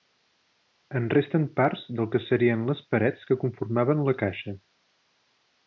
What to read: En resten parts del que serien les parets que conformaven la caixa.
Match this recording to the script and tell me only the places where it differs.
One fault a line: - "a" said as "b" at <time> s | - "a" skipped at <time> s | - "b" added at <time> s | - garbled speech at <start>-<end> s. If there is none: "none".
none